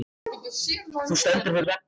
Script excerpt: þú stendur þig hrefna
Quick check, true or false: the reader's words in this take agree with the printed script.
true